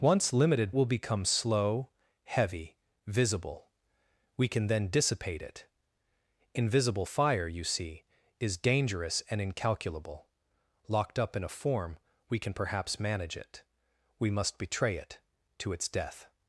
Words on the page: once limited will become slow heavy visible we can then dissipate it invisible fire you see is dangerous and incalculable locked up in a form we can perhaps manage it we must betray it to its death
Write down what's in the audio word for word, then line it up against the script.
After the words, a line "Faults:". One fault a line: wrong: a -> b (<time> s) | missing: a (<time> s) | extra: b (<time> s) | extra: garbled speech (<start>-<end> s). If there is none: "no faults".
once limited will become slow heavy visible we can then dissipate it invisible fire you see is dangerous and incalculable locked up in a form we can perhaps manage it we must betray it to its death
Faults:
no faults